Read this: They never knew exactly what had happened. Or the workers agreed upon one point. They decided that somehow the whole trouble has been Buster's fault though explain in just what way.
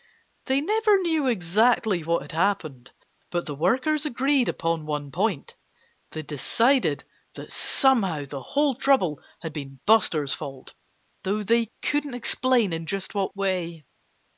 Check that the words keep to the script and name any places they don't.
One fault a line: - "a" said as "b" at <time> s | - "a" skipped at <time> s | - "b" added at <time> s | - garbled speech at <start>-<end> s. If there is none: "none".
- "Or" said as "But" at 3.3 s
- "has" said as "had" at 9.4 s
- "they couldn't" added at 11.4 s